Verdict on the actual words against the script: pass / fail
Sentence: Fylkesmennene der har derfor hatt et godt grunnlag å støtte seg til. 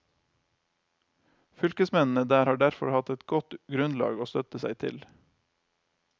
pass